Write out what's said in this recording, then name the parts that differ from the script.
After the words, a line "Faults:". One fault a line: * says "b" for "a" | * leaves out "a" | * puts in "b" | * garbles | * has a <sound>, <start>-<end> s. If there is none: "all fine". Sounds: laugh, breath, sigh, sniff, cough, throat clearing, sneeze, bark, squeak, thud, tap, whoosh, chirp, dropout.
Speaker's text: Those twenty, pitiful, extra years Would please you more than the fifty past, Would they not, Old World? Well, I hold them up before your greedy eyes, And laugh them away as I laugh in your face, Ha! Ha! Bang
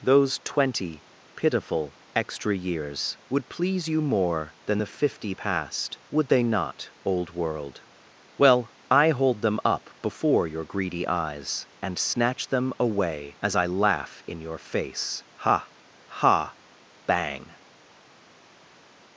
Those twenty, pitiful, extra years Would please you more than the fifty past, Would they not, Old World? Well, I hold them up before your greedy eyes, And snatch them away as I laugh in your face, Ha! Ha! Bang
Faults:
* says "snatch" for "laugh"